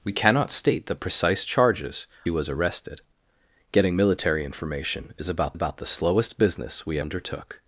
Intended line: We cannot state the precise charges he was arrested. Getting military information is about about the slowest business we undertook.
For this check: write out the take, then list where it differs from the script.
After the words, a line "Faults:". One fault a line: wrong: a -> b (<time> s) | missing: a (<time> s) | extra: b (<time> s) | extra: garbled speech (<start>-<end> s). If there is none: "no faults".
We cannot state the precise charges he was arrested. Getting military information is about about the slowest business we undertook.
Faults:
no faults